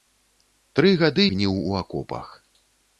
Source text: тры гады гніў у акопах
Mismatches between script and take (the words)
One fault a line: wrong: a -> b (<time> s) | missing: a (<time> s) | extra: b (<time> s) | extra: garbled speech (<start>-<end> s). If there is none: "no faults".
no faults